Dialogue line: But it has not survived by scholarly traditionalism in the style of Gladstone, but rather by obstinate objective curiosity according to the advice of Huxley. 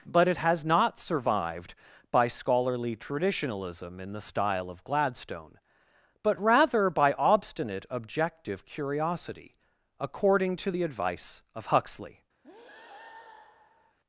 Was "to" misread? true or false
false